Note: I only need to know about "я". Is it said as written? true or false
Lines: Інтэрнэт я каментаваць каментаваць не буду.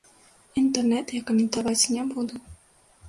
true